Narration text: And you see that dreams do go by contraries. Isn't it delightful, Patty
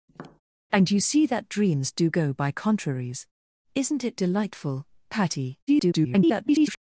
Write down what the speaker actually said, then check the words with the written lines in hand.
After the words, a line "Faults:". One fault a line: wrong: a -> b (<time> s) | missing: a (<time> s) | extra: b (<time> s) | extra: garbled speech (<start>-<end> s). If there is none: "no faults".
And you see that dreams do go by contraries. Isn't it delightful, Patty [garbled]
Faults:
extra: garbled speech (5.7-6.8 s)